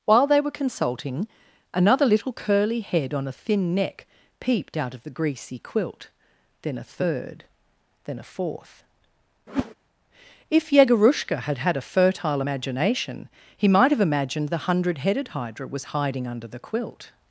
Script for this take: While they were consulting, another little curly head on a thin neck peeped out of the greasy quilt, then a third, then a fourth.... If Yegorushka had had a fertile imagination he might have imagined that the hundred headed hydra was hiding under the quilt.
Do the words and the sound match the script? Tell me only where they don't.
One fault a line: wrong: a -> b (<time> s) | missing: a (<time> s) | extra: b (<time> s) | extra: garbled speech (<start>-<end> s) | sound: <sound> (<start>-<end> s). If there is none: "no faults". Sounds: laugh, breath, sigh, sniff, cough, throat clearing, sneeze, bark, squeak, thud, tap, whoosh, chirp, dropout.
sound: whoosh (9.5-9.7 s)
missing: that (14.5 s)